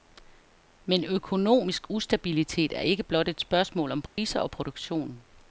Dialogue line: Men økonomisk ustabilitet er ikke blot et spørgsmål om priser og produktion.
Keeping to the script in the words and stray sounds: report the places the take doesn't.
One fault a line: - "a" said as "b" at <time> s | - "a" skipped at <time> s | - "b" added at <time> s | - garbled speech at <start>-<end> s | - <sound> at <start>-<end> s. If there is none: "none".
- dropout at 4.1-4.2 s